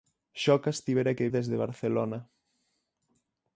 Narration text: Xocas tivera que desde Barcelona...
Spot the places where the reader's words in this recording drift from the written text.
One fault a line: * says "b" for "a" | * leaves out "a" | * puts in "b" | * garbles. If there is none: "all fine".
all fine